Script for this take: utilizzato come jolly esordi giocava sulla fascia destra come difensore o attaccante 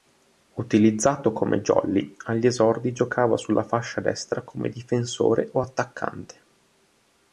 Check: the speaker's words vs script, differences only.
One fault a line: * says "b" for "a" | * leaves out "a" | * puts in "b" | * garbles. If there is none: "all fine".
* puts in "agli"